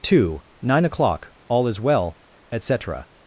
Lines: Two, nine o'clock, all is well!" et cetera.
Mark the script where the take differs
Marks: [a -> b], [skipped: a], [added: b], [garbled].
Two, nine o'clock, all is well!" et cetera.